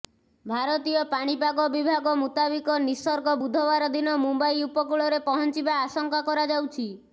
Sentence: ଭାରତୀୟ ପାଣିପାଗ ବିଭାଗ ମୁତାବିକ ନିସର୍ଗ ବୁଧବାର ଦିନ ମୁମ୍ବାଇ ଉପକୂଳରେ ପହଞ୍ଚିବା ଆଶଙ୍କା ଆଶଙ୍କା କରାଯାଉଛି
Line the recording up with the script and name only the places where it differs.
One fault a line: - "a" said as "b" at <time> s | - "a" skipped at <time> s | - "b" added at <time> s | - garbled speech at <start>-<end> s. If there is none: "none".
- "ଆଶଙ୍କା" skipped at 6.3 s